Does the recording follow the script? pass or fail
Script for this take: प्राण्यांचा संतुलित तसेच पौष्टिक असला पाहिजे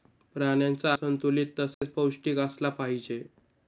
pass